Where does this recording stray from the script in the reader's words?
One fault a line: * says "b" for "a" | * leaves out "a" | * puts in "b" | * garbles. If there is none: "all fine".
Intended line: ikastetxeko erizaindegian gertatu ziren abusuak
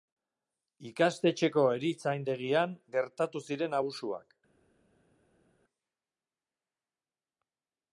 all fine